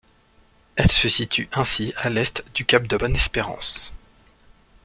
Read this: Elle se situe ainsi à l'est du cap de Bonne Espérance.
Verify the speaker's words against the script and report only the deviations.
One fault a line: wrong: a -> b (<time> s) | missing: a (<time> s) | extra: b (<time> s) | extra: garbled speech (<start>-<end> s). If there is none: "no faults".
no faults